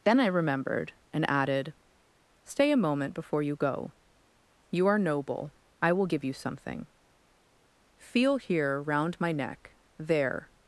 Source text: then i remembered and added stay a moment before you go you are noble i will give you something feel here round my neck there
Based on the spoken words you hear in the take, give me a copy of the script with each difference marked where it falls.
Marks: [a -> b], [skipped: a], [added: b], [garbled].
then i remembered and added stay a moment before you go you are noble i will give you something feel here round my neck there